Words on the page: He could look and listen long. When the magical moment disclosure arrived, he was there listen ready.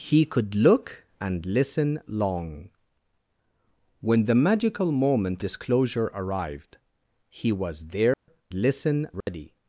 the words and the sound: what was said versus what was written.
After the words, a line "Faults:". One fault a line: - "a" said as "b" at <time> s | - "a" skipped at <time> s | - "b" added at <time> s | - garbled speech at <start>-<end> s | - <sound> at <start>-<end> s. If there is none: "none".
He could look and listen long. When the magical moment disclosure arrived, he was there listen ready.
Faults:
- dropout at 8.1-8.3 s
- dropout at 9.2-9.3 s